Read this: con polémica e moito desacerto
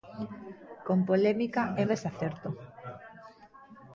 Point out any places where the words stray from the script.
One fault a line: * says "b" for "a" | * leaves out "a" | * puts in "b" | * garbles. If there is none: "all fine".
* leaves out "moito"